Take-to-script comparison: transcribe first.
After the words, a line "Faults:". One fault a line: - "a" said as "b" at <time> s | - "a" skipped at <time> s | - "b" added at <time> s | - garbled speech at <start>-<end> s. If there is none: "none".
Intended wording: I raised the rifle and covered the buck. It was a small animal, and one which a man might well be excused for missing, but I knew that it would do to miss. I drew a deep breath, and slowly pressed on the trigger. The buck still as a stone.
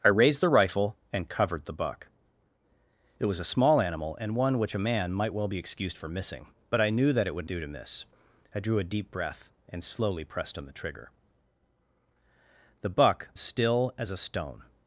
I raised the rifle and covered the buck. It was a small animal, and one which a man might well be excused for missing, but I knew that it would do to miss. I drew a deep breath, and slowly pressed on the trigger. The buck still as a stone.
Faults:
none